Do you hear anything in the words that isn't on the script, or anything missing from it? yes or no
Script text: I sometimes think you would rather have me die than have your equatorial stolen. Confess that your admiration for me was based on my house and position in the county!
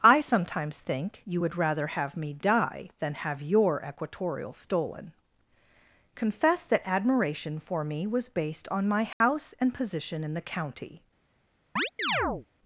yes